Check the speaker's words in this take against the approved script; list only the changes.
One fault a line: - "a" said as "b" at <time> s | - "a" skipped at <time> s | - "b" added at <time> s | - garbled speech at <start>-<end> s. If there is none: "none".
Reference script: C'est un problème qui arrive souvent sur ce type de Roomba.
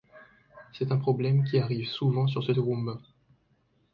- "type" skipped at 2.5 s